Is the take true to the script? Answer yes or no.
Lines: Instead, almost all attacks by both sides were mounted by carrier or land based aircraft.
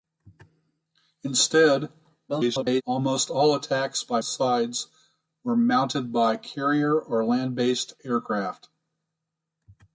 no